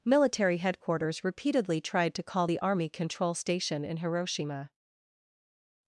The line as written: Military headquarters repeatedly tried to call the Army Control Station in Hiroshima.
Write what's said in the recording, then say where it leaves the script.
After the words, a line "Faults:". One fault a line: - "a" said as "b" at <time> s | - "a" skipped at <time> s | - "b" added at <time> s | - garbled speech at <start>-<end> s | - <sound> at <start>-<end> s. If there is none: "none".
Military headquarters repeatedly tried to call the Army Control Station in Hiroshima.
Faults:
none